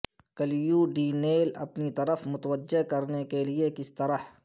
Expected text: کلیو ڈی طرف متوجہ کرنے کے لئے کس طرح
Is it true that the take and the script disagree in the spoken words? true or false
true